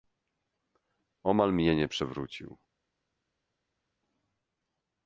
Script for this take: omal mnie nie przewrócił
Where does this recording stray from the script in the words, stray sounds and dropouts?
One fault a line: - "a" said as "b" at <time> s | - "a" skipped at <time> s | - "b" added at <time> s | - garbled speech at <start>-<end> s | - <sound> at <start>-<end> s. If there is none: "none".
none